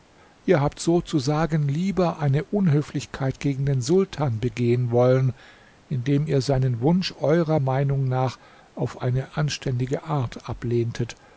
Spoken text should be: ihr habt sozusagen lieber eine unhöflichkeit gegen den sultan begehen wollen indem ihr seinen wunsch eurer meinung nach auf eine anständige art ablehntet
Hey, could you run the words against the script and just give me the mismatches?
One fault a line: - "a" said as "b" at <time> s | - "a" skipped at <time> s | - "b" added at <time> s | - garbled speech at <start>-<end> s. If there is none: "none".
none